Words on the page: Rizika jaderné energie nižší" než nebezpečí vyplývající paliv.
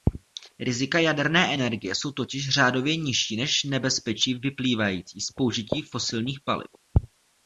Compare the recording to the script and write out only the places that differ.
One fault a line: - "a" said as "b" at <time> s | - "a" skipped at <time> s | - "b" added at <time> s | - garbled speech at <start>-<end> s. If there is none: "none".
- "jsou totiž řádově" added at 2.0 s
- "z použití fosilních" added at 5.2 s